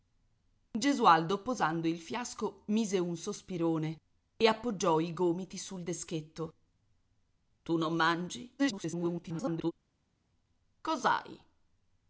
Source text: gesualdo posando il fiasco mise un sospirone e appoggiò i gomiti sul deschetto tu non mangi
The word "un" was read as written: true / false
true